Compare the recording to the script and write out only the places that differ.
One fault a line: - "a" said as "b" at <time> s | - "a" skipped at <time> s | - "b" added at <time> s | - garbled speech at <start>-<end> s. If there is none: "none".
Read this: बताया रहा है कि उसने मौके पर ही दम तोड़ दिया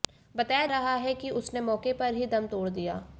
none